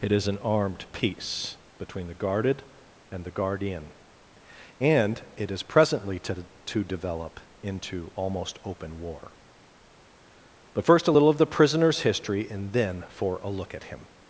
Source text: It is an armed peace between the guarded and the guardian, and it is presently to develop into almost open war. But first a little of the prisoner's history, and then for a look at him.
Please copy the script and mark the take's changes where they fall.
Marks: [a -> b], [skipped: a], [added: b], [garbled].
It is an armed peace between the guarded and the guardian, and it is presently to [added: to] develop into almost open war. But first a little of the prisoner's history, and then for a look at him.